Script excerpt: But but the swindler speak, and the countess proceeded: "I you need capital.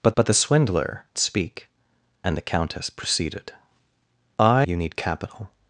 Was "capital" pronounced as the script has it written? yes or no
yes